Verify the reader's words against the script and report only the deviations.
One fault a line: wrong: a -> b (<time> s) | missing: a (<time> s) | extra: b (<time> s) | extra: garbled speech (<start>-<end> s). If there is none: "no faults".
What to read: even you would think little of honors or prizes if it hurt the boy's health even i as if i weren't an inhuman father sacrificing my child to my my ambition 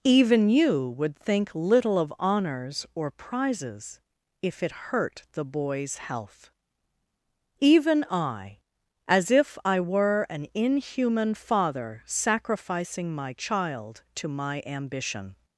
wrong: weren't -> were (9.8 s)
missing: my (14.6 s)